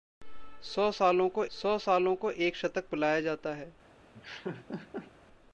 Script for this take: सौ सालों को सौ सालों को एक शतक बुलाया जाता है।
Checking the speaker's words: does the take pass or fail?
pass